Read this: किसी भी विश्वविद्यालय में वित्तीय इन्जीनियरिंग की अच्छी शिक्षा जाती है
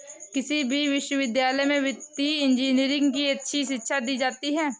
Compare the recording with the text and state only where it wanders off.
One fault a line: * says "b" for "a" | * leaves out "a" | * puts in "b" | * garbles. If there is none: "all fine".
* puts in "दी"